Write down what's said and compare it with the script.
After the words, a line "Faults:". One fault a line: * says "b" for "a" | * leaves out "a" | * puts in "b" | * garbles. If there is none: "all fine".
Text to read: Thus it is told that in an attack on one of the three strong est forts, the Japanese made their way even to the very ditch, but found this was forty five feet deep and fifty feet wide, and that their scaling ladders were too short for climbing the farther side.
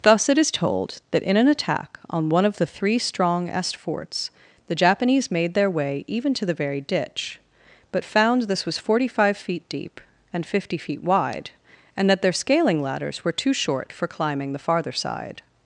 Thus it is told that in an attack on one of the three strong est forts, the Japanese made their way even to the very ditch, but found this was forty five feet deep and fifty feet wide, and that their scaling ladders were too short for climbing the farther side.
Faults:
all fine